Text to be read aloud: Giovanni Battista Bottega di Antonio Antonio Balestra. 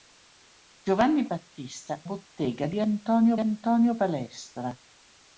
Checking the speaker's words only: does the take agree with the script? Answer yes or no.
yes